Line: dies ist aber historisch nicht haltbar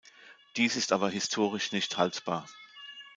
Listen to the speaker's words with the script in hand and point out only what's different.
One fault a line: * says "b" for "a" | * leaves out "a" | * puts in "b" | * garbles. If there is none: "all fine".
all fine